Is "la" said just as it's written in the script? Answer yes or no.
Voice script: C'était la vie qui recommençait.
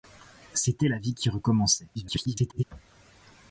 yes